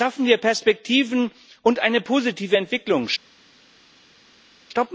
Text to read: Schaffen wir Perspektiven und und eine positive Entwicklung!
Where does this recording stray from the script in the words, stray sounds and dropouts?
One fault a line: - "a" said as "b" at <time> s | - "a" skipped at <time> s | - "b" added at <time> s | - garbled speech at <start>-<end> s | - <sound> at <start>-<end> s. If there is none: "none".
- "und" skipped at 1.8 s